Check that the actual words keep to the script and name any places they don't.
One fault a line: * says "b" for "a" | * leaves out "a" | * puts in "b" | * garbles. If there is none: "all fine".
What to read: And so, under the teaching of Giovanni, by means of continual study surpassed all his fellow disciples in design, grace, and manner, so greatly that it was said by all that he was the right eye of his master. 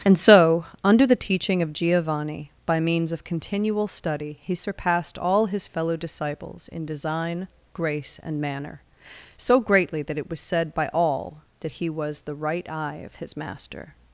* puts in "he"